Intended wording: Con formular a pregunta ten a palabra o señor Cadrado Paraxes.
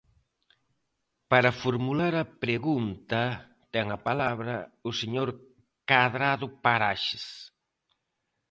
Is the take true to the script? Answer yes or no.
no